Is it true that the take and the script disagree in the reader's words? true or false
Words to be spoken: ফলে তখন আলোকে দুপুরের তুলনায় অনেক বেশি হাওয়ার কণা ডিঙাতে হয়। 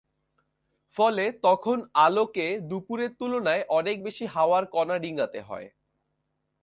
false